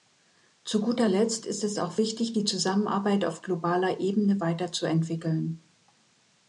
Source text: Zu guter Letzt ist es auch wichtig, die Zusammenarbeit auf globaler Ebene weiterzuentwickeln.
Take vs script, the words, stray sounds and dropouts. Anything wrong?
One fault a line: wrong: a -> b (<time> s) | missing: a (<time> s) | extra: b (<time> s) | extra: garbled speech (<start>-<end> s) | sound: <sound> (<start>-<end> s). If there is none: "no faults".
no faults